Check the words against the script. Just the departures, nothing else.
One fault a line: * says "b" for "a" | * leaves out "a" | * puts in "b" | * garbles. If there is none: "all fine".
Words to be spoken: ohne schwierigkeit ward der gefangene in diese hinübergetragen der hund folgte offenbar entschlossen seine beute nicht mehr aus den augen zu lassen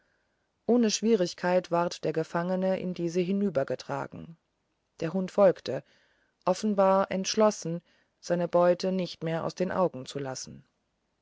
all fine